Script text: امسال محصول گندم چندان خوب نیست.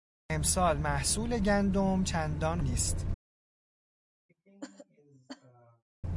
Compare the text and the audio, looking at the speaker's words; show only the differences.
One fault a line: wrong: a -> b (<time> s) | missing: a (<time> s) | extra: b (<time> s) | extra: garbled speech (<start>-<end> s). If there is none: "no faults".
missing: خوب (2.6 s)